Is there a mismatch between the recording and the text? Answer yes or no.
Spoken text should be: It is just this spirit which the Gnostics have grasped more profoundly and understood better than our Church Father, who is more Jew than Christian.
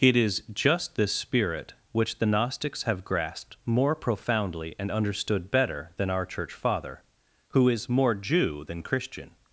no